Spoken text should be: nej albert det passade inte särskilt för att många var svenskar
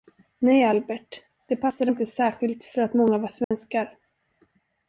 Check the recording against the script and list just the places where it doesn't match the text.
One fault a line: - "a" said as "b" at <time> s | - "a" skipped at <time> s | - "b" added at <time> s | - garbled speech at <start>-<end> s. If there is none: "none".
none